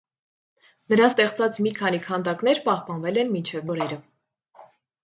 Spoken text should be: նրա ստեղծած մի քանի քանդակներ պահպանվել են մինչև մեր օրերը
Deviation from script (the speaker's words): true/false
true